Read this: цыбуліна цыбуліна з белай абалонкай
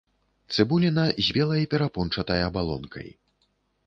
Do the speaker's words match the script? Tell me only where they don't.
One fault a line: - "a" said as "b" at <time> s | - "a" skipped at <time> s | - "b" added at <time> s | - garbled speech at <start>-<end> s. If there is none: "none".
- "цыбуліна" skipped at 1.0 s
- "перапончатай" added at 1.7 s